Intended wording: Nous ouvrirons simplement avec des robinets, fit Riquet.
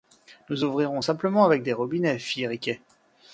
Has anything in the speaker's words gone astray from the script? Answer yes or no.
no